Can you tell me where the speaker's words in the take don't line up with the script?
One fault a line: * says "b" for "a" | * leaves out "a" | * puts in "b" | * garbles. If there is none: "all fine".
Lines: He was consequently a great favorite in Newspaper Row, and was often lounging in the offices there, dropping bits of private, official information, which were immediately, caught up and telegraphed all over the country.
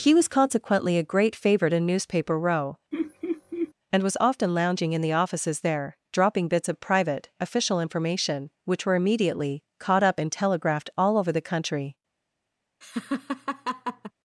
all fine